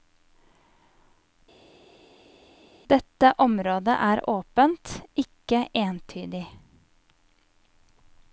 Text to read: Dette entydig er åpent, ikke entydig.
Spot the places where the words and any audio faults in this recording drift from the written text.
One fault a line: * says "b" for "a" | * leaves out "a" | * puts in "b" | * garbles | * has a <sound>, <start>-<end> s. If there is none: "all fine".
* says "området" for "entydig"